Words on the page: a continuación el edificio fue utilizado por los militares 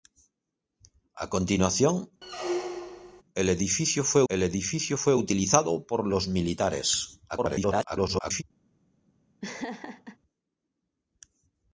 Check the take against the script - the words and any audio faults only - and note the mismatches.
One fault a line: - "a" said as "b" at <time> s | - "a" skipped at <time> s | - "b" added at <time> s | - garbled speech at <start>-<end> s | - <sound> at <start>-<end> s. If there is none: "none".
- squeak at 2.2-3.2 s
- "el edificio fue" added at 4.3 s
- garbled speech at 7.3-8.4 s
- laugh at 9.4-10.2 s